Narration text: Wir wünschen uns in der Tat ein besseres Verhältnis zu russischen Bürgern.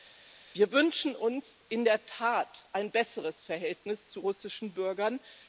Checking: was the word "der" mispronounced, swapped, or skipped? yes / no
no